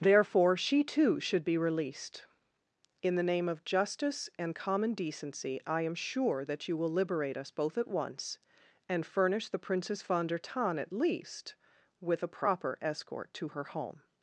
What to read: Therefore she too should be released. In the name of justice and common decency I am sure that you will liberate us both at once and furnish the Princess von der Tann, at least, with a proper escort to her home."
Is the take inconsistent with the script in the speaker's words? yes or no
no